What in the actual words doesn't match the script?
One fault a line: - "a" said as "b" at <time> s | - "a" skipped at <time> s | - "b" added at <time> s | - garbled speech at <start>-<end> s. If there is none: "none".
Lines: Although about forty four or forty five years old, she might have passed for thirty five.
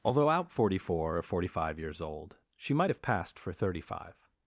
- "about" said as "out" at 0.3 s